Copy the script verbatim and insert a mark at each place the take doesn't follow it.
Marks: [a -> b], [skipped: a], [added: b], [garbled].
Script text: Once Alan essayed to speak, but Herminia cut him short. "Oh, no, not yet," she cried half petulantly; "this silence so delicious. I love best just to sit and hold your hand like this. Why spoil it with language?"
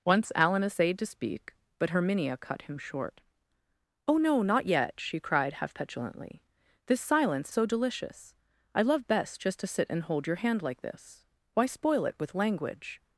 Once Alan essayed to speak, but Herminia cut him short. "Oh, no, not yet," she cried half petulantly; "this silence so delicious. I love best just to sit and hold your hand like this. Why spoil it with language?"